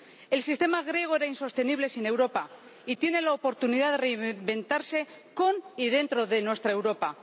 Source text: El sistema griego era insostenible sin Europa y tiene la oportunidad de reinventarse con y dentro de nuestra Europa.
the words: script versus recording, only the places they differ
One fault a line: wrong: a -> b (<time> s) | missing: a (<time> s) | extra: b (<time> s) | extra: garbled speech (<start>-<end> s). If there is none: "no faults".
no faults